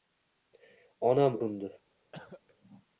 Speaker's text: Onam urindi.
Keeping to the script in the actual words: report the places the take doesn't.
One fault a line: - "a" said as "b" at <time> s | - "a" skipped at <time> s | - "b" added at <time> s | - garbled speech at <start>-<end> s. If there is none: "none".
none